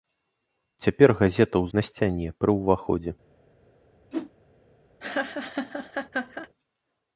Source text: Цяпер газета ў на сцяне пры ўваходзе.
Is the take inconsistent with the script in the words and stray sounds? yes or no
yes